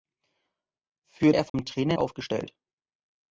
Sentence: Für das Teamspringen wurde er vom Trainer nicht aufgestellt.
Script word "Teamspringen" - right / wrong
wrong